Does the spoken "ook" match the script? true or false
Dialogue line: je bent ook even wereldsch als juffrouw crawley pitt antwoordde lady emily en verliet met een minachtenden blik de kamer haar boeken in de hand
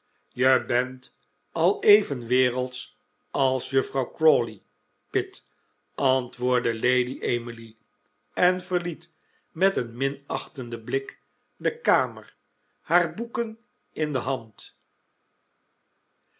false